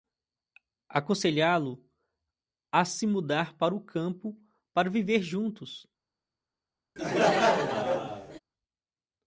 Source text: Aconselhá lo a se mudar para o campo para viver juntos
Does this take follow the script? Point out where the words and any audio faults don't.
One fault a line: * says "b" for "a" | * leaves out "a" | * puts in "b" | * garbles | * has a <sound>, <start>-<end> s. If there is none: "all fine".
* has a laugh, 7.0-8.4 s